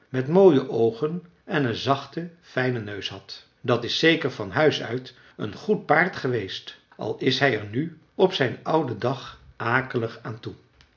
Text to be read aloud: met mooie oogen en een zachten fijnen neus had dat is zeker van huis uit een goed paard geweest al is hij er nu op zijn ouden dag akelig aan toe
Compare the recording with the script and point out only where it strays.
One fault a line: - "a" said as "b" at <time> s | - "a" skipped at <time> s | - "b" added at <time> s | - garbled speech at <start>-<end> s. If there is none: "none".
none